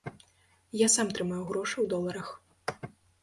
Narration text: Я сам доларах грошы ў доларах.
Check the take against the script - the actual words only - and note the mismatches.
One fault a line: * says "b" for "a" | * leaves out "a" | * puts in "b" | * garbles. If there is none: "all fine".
* says "трымаю" for "доларах"